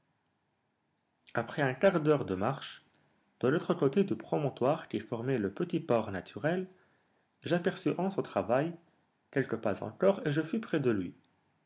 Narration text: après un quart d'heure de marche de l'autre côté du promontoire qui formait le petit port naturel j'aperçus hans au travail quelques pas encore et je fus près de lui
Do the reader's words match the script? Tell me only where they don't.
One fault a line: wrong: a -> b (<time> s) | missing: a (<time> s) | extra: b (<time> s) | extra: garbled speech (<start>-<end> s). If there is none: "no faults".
no faults